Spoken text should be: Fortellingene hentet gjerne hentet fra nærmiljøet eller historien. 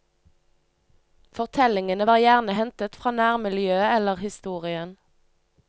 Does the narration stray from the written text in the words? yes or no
yes